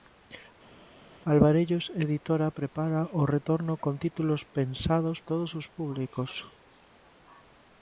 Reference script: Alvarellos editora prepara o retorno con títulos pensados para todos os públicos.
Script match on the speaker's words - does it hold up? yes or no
no